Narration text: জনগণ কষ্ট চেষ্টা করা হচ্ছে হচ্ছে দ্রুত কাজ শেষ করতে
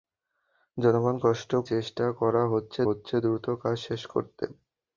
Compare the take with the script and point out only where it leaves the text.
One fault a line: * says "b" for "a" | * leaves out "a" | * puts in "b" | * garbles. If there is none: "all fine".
all fine